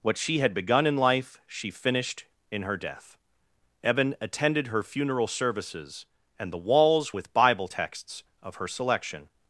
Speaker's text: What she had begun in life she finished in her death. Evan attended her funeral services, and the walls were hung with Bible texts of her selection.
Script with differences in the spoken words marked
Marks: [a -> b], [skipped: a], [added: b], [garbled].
What she had begun in life she finished in her death. Evan attended her funeral services, and the walls [skipped: were hung] with Bible texts of her selection.